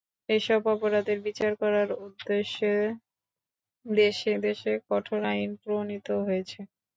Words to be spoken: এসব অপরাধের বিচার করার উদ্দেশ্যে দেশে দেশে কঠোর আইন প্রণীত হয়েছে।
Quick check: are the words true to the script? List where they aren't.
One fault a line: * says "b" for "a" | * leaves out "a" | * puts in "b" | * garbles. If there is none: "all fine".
all fine